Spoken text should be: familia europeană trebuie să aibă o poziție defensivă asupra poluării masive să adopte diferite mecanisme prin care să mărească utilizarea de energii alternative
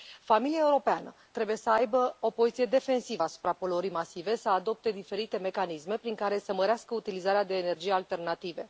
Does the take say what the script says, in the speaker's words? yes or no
yes